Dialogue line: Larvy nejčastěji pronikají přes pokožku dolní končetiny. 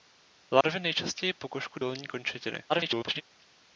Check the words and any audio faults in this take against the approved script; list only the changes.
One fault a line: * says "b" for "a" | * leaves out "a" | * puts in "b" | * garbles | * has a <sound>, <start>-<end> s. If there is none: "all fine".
* has a dropout, 0.6-0.6 s
* leaves out "pronikají přes"
* garbles